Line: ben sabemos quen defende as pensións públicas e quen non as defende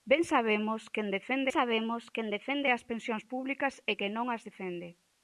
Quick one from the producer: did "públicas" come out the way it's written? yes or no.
yes